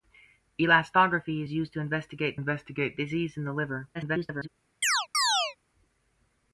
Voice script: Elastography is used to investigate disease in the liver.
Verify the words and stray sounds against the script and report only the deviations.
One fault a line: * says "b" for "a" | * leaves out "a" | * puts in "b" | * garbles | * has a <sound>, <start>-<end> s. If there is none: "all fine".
* puts in "investigate"
* garbles
* has a chirp, 4.8-5.6 s